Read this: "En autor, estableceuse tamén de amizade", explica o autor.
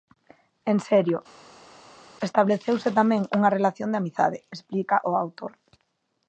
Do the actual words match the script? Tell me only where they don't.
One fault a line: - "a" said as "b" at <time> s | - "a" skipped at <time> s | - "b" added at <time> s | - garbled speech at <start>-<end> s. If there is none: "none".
- "autor" said as "serio" at 0.9 s
- "unha relación" added at 3.4 s